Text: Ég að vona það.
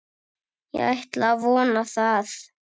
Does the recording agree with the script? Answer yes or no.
no